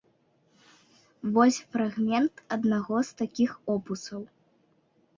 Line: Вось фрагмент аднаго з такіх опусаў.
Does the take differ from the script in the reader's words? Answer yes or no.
no